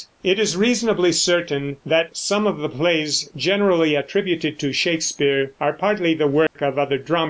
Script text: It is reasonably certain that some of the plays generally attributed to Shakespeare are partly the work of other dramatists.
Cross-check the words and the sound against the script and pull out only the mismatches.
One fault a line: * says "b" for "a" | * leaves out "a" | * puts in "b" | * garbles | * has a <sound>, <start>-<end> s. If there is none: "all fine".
* has a dropout, 6.5-6.6 s